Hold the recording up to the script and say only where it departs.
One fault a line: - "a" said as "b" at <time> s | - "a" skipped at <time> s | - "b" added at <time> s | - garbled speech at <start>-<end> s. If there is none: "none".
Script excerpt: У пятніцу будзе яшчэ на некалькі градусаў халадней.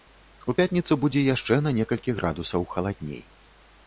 none